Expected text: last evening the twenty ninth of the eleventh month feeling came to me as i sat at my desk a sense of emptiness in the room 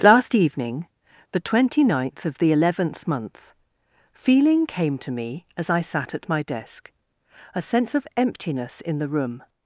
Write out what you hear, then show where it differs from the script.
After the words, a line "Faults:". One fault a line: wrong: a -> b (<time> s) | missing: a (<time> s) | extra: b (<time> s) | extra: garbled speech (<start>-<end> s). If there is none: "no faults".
last evening the twenty ninth of the eleventh month feeling came to me as i sat at my desk a sense of emptiness in the room
Faults:
no faults